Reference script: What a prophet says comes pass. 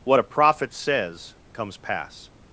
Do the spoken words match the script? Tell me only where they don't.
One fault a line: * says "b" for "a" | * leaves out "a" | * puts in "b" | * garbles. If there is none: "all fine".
all fine